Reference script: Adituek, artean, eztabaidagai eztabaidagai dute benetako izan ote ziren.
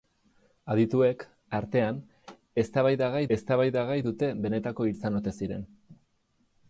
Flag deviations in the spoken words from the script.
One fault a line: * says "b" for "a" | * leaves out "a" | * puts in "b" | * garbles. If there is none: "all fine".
all fine